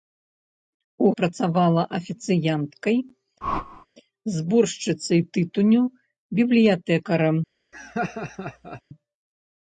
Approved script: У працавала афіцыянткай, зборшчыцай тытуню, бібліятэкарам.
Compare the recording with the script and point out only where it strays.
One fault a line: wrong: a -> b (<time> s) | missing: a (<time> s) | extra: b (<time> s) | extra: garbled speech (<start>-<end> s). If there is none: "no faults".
no faults